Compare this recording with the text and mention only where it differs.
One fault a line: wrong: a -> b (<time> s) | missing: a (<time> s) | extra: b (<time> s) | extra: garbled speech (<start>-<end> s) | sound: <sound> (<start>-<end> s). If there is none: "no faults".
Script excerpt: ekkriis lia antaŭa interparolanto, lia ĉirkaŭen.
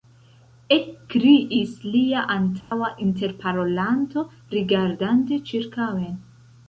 sound: dropout (2.6-2.7 s)
wrong: lia -> rigardante (4.6 s)